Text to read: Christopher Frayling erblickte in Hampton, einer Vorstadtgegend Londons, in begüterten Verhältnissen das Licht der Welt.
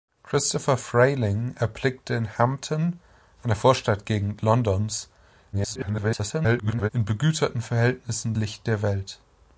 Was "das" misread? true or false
true